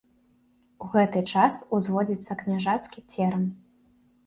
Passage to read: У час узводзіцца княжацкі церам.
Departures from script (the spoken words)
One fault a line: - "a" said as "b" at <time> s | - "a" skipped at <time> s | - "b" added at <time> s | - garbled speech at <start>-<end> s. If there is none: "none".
- "гэты" added at 0.9 s